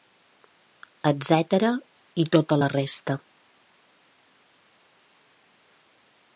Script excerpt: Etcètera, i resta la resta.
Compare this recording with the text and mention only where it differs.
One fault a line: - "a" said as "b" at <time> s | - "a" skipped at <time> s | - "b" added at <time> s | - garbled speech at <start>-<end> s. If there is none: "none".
- "resta" said as "tota" at 2.4 s